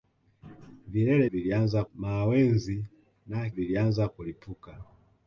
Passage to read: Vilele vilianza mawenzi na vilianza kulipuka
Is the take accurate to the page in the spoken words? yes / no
yes